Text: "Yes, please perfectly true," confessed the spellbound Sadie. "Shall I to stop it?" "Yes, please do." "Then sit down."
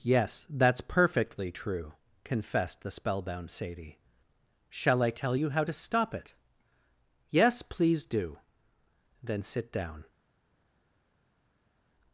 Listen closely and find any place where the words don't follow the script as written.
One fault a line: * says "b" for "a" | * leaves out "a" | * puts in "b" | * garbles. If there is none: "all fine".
* says "that's" for "please"
* puts in "tell you how"